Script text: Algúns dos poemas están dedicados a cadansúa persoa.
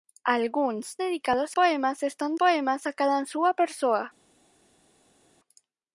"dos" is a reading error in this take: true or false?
true